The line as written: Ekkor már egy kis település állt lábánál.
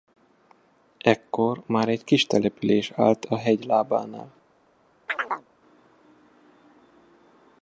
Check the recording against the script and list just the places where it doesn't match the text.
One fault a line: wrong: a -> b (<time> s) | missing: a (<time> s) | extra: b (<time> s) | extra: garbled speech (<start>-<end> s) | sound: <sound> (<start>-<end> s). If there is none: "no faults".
extra: a hegy (3.3 s)
sound: chirp (5.1-5.5 s)